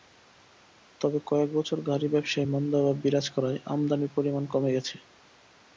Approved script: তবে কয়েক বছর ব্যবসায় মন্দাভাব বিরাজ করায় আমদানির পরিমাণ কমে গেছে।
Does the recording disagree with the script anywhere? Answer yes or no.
yes